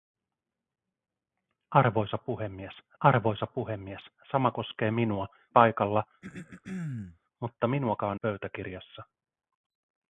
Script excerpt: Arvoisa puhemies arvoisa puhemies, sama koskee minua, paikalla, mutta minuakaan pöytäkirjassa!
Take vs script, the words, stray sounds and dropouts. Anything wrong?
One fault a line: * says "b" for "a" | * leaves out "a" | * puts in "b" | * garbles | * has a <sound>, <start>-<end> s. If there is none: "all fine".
* has a throat clearing, 6.2-7.2 s